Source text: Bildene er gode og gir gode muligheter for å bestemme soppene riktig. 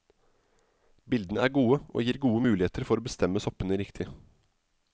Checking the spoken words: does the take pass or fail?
pass